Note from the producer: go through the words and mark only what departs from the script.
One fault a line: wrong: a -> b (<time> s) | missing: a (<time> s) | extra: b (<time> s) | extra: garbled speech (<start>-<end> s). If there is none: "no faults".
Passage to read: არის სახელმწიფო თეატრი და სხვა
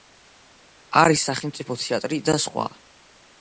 no faults